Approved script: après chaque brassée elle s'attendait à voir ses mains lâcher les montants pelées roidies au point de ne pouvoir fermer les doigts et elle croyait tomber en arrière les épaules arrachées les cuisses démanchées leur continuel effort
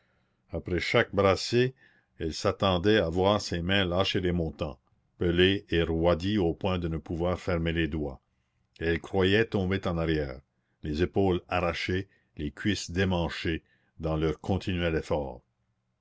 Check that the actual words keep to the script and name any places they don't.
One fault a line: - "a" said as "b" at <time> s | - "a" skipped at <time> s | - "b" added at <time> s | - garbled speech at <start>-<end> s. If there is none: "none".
- "et" added at 5.7 s
- "dans" added at 14.0 s